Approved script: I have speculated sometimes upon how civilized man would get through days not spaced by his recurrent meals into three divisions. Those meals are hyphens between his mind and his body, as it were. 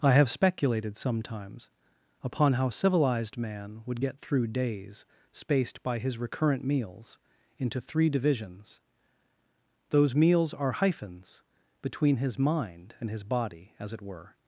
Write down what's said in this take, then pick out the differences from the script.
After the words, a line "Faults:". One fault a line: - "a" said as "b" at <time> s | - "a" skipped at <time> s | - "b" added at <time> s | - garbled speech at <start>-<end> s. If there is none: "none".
I have speculated sometimes upon how civilized man would get through days spaced by his recurrent meals into three divisions. Those meals are hyphens between his mind and his body, as it were.
Faults:
- "not" skipped at 5.0 s